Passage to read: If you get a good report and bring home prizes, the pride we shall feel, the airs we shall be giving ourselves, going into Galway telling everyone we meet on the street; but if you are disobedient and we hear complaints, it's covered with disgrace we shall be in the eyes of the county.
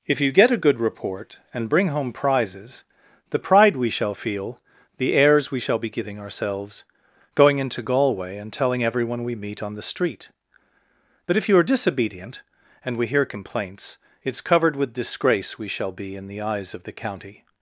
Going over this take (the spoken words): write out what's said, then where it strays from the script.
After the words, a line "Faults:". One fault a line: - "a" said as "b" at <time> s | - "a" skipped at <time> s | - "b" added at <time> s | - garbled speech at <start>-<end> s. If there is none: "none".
If you get a good report and bring home prizes, the pride we shall feel, the airs we shall be giving ourselves, going into Galway and telling everyone we meet on the street; but if you are disobedient and we hear complaints, it's covered with disgrace we shall be in the eyes of the county.
Faults:
- "and" added at 8.4 s